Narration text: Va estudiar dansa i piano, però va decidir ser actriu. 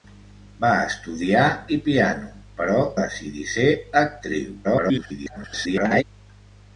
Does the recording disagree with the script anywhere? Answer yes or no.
yes